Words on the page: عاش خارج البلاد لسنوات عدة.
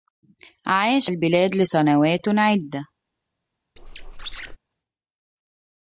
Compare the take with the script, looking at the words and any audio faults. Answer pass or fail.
fail